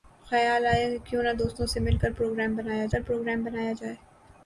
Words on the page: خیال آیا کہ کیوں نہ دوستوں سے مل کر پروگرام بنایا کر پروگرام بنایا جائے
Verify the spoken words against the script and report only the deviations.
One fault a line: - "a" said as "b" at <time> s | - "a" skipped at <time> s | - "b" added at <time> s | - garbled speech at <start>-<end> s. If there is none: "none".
none